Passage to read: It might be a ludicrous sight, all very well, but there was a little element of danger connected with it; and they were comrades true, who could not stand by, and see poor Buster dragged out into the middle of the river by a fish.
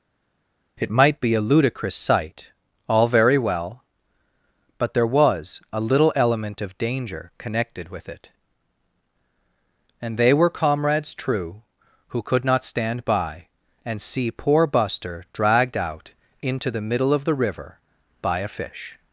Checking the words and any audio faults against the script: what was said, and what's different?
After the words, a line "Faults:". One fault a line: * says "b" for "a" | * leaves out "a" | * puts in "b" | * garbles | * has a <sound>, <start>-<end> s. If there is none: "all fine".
It might be a ludicrous sight, all very well, but there was a little element of danger connected with it; and they were comrades true, who could not stand by, and see poor Buster dragged out into the middle of the river by a fish.
Faults:
all fine